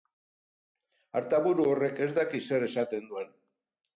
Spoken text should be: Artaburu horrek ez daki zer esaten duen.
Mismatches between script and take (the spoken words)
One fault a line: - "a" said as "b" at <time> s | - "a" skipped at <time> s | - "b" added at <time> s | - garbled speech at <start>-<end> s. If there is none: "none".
none